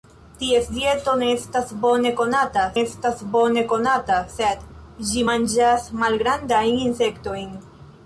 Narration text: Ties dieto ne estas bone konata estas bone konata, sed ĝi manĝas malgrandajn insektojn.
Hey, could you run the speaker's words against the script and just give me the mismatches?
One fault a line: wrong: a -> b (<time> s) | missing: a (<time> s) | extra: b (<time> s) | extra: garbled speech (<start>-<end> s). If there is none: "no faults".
no faults